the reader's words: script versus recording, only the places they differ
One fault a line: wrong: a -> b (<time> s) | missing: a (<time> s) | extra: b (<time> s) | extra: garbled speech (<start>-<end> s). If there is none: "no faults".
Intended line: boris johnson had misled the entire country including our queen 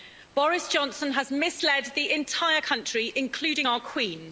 wrong: had -> has (1.1 s)